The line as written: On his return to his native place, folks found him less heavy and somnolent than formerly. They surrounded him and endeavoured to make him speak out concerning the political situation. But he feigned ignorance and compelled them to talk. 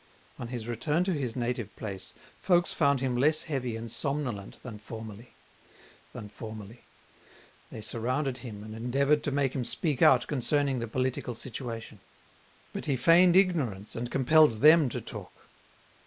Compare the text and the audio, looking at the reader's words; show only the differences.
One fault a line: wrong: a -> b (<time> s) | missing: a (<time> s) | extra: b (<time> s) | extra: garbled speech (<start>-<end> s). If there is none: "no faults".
extra: than formerly (6.1 s)